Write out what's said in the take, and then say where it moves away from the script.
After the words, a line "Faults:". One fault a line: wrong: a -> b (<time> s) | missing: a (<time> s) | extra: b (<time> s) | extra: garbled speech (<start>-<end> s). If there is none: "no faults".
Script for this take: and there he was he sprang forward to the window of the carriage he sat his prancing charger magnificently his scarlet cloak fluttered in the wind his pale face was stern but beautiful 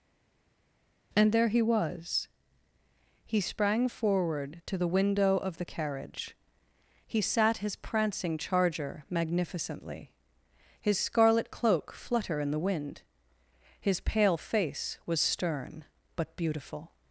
and there he was he sprang forward to the window of the carriage he sat his prancing charger magnificently his scarlet cloak flutter in the wind his pale face was stern but beautiful
Faults:
wrong: fluttered -> flutter (11.9 s)